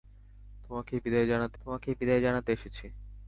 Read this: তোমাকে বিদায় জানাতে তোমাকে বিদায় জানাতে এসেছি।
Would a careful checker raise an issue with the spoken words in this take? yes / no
no